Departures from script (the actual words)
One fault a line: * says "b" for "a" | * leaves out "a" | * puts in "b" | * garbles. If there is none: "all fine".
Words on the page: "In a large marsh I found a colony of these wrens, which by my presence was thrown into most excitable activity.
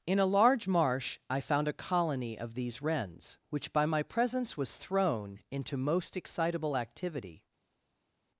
all fine